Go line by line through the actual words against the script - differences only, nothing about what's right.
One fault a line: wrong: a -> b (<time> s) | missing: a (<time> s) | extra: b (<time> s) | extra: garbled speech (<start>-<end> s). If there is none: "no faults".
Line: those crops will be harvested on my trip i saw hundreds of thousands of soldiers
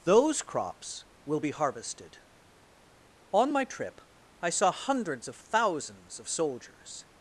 no faults